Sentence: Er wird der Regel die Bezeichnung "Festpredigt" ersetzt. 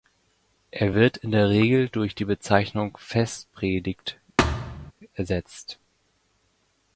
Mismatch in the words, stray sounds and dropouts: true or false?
true